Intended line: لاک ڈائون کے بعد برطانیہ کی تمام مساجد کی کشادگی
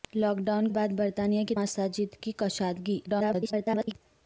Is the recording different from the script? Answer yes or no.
yes